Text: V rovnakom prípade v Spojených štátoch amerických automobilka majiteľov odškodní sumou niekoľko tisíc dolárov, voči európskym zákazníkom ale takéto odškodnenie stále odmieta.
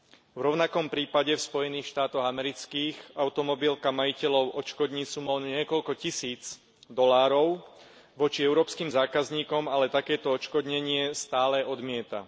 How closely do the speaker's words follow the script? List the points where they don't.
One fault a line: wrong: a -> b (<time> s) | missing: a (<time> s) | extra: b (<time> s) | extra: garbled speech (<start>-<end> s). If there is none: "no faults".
no faults